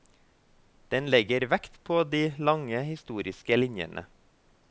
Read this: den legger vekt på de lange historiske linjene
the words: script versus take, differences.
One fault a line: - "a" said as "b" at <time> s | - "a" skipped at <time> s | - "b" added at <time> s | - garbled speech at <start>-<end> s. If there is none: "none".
none